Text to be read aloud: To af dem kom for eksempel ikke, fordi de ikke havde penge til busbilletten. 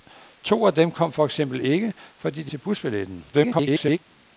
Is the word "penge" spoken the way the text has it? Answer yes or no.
no